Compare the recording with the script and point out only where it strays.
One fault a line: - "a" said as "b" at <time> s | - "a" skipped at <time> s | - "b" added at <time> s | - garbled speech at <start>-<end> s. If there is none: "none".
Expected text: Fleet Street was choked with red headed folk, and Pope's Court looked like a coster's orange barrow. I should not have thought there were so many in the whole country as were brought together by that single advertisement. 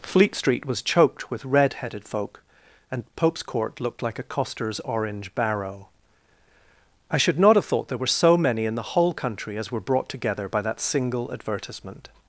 none